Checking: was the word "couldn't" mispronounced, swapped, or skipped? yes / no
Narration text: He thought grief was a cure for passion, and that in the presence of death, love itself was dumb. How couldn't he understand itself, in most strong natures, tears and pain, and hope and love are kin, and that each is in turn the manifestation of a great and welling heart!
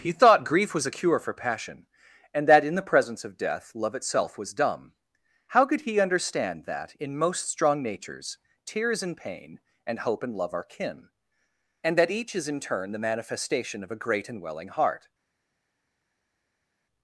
yes